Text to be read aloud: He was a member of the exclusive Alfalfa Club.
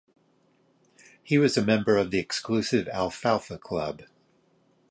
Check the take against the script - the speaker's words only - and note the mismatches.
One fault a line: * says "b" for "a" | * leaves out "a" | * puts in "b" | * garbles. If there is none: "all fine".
all fine